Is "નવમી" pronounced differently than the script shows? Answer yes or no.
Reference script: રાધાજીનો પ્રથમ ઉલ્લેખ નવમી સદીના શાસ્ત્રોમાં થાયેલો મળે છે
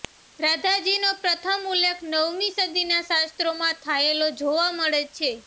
no